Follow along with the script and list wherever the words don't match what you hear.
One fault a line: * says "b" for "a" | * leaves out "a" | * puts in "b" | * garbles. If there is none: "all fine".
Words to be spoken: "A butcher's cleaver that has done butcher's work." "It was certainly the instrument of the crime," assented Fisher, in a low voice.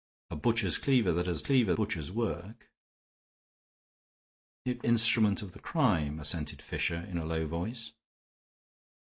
* says "cleaver" for "done"
* leaves out "was certainly the"